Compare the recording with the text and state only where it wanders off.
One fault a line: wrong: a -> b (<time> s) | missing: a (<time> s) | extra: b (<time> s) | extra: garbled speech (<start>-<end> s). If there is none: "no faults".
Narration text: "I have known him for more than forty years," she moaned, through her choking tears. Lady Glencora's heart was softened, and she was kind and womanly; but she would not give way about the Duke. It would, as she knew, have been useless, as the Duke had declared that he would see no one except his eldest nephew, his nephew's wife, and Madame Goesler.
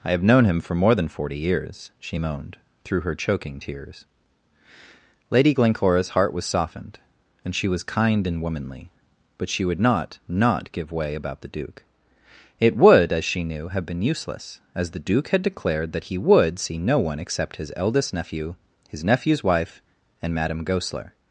extra: not (10.3 s)